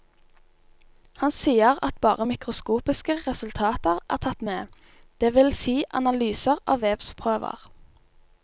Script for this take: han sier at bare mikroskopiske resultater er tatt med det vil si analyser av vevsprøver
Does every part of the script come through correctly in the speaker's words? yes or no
yes